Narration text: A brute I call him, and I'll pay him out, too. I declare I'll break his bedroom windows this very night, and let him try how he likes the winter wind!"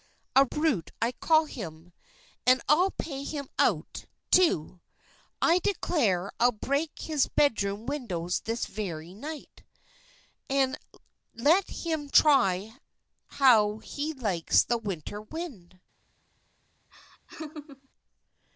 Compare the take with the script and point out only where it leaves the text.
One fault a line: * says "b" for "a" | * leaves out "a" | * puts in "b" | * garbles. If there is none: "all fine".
all fine